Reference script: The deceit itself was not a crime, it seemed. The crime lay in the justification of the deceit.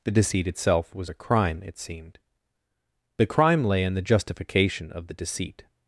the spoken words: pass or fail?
fail